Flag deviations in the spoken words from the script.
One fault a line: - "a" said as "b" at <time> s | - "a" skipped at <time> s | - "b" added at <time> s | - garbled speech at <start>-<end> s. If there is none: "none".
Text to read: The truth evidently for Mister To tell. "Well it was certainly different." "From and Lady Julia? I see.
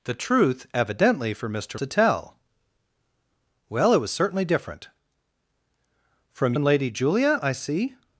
none